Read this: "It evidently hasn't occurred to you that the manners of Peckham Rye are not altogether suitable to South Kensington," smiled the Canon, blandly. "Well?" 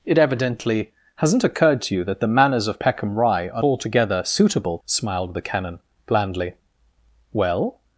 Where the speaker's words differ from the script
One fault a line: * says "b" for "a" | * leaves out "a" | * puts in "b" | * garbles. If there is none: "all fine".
* leaves out "not"
* leaves out "to South Kensington"